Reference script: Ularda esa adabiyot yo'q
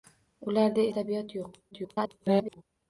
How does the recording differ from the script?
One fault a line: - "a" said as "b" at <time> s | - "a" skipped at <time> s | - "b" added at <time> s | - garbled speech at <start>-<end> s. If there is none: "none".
- "esa" skipped at 0.9 s
- garbled speech at 1.7-2.6 s